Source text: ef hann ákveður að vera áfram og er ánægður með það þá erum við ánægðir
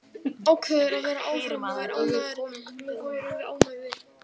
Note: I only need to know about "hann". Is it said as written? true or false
false